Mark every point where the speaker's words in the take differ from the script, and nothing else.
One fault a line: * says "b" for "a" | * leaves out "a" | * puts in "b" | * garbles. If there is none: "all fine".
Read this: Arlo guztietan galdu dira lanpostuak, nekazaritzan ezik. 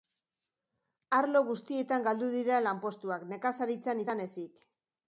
* puts in "izan"